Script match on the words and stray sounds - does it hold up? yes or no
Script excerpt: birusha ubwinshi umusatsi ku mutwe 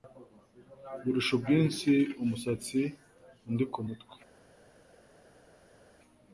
no